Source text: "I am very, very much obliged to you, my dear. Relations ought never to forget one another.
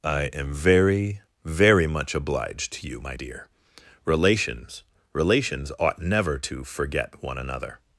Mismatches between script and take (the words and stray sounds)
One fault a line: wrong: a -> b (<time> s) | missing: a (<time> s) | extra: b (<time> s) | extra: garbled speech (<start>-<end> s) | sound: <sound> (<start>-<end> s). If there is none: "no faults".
extra: Relations (5.1 s)